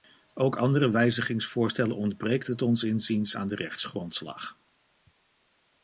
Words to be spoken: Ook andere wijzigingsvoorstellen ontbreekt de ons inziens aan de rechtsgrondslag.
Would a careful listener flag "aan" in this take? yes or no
no